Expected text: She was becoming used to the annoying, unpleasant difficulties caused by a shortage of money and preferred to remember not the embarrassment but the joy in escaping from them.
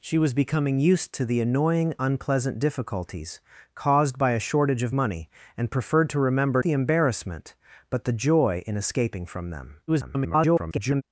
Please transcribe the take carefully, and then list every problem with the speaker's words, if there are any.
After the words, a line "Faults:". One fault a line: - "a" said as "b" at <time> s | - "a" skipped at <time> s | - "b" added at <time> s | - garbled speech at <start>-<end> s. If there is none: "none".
She was becoming used to the annoying, unpleasant difficulties caused by a shortage of money and preferred to remember the embarrassment but the joy in escaping from them. [garbled]
Faults:
- "not" skipped at 6.6 s
- garbled speech at 9.9-11.0 s